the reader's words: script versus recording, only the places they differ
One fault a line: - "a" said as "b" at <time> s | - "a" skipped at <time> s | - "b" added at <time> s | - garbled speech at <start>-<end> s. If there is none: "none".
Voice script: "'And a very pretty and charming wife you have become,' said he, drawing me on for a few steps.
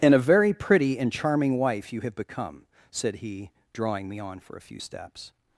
none